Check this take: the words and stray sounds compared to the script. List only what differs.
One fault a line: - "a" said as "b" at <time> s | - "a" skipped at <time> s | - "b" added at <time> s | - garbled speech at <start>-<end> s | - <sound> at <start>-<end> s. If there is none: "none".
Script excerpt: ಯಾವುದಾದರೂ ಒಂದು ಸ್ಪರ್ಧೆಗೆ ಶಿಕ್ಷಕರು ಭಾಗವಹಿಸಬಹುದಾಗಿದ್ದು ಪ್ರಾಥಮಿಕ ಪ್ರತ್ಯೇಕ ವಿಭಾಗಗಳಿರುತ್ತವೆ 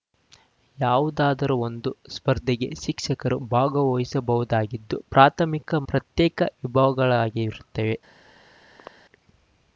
- throat clearing at 8.8-8.9 s